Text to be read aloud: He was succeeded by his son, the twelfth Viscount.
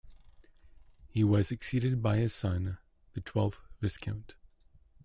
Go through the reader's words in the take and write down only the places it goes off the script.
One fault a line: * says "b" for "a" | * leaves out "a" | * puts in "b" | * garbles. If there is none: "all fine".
all fine